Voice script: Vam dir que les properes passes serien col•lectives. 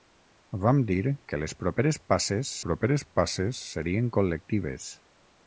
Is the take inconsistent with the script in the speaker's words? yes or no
yes